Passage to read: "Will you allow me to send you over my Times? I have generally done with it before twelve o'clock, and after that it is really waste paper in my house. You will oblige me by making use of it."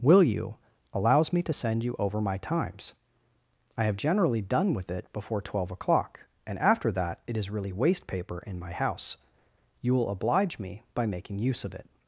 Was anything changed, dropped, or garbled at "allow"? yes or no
yes